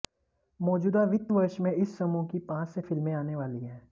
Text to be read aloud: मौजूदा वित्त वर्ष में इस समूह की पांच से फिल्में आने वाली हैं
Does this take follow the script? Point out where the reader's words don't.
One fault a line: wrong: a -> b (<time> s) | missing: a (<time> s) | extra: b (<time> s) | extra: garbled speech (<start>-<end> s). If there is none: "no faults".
no faults